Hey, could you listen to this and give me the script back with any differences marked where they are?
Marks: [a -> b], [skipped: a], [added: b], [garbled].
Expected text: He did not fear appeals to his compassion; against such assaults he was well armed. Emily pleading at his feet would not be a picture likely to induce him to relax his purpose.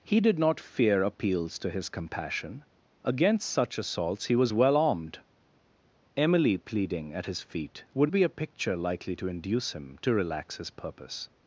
He did not fear appeals to his compassion; against such assaults he was well armed. Emily pleading at his feet would [skipped: not] be a picture likely to induce him to relax his purpose.